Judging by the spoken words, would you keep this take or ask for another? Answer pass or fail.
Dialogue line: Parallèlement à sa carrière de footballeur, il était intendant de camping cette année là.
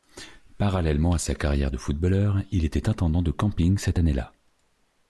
pass